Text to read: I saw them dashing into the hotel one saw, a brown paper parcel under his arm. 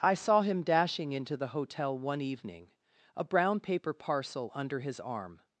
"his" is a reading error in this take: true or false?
false